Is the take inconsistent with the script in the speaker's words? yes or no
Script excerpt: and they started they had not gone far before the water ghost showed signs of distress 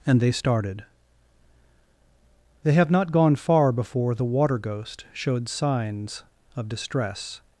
yes